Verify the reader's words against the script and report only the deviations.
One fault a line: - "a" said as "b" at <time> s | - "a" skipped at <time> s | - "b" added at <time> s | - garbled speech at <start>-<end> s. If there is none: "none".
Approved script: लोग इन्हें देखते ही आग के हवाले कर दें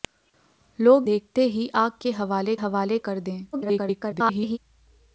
- "इन्हें" skipped at 1.1 s
- "हवाले" added at 2.5 s
- garbled speech at 3.5-4.6 s